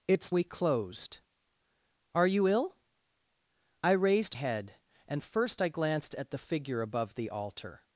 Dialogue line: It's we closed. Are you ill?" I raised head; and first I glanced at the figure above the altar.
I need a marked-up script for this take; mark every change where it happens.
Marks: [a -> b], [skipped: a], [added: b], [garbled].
It's we closed. Are you ill?" I raised head; and first I glanced at the figure above the altar.